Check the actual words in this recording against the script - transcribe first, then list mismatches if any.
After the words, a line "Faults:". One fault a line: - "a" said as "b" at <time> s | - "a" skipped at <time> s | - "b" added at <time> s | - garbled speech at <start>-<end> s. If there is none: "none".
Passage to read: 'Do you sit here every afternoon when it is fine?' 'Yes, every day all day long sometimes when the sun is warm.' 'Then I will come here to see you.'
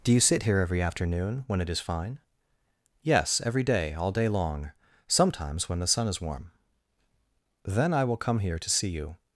'Do you sit here every afternoon when it is fine?' 'Yes, every day all day long sometimes when the sun is warm.' 'Then I will come here to see you.'
Faults:
none